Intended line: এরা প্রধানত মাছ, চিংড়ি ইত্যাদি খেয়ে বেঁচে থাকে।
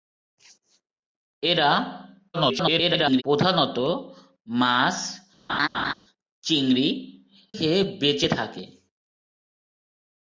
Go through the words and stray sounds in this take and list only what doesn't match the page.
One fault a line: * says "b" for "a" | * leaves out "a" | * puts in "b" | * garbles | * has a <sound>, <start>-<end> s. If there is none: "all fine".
* garbles
* has a laugh, 5.5-5.9 s
* leaves out "ইত্যাদি"